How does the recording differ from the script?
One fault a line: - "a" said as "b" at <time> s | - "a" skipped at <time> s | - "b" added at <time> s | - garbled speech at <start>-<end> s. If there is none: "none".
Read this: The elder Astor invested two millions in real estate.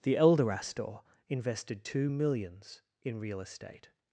none